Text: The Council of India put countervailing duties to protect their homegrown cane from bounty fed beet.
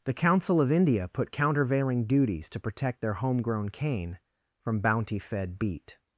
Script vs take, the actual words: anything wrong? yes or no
no